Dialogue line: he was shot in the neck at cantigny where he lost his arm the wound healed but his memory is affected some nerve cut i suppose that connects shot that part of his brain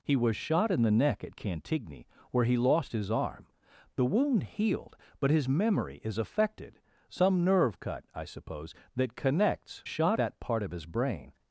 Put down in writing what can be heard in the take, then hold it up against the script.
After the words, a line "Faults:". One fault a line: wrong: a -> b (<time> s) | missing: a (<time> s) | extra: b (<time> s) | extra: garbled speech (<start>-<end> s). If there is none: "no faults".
he was shot in the neck at cantigny where he lost his arm the wound healed but his memory is affected some nerve cut i suppose that connects shot that part of his brain
Faults:
no faults